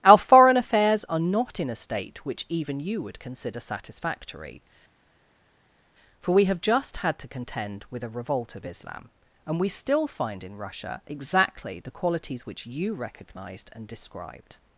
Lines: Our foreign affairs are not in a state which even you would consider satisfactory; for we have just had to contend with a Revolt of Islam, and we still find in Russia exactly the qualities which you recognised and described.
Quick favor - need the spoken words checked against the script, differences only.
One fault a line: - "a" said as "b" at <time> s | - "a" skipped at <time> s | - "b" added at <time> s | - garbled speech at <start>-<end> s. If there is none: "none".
none